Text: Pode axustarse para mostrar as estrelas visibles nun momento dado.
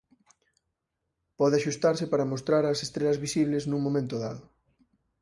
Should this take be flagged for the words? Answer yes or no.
no